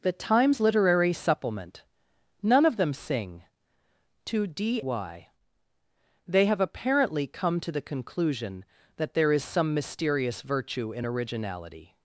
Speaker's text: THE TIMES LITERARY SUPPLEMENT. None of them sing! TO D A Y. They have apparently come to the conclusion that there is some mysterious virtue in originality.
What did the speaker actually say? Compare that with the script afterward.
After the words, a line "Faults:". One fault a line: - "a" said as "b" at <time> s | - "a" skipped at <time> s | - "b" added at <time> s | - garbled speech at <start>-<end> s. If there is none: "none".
THE TIMES LITERARY SUPPLEMENT. None of them sing! TO D Y. They have apparently come to the conclusion that there is some mysterious virtue in originality.
Faults:
- "A" skipped at 4.8 s